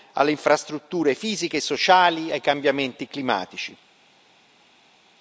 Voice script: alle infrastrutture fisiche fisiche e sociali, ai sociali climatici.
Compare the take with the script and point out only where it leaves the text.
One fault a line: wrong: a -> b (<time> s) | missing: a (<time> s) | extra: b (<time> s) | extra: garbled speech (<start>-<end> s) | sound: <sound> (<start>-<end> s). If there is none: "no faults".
missing: fisiche (1.6 s)
wrong: sociali -> cambiamenti (2.4 s)